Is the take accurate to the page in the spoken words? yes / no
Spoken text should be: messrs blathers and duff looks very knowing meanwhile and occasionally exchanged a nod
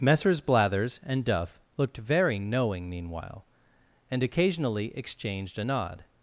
no